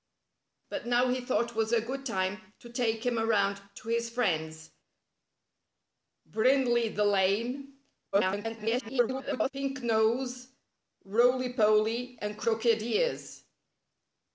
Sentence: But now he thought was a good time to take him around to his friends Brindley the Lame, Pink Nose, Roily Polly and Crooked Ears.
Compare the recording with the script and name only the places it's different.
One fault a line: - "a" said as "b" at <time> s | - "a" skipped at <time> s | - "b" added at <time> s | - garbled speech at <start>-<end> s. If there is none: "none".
- garbled speech at 8.1-9.5 s